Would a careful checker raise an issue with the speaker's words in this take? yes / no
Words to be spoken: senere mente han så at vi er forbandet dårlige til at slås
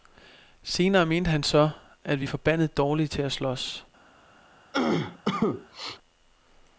no